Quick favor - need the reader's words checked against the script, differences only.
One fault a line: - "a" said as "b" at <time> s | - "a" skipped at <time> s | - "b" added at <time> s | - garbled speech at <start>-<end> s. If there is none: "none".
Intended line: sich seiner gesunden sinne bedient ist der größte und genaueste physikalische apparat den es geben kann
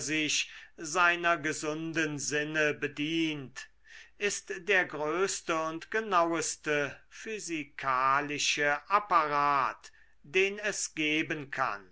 none